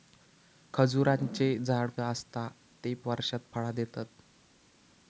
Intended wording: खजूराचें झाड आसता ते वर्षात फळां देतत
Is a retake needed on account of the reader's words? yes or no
no